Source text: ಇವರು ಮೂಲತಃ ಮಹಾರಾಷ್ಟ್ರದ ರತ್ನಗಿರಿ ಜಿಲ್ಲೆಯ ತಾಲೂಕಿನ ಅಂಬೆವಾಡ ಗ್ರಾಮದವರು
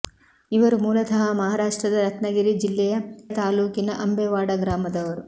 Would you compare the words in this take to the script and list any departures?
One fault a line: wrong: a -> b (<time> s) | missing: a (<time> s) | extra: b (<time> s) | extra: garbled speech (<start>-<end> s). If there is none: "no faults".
no faults